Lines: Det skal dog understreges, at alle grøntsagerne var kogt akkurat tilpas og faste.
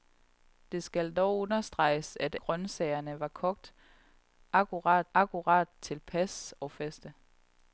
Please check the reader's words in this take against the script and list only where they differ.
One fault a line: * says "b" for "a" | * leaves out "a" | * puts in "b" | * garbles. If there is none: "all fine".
* leaves out "alle"
* puts in "akkurat"